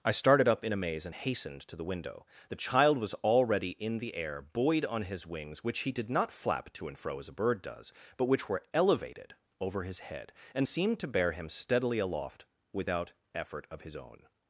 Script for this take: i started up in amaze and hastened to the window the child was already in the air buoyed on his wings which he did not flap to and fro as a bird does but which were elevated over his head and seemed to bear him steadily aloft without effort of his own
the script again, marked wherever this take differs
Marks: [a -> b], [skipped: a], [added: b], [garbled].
i started up in amaze and hastened to the window the child was already in the air buoyed on his wings which he did not flap to and fro as a bird does but which were elevated over his head and seemed to bear him steadily aloft without effort of his own